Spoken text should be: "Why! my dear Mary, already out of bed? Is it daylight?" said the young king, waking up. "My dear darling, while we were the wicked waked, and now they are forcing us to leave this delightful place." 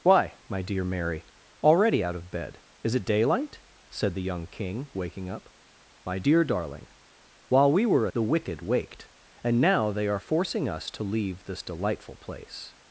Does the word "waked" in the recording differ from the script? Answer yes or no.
no